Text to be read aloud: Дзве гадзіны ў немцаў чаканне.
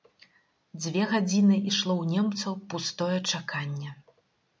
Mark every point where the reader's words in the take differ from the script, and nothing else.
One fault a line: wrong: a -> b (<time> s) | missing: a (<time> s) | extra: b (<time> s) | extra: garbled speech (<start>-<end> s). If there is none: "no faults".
extra: ішло (1.7 s)
extra: пустое (2.7 s)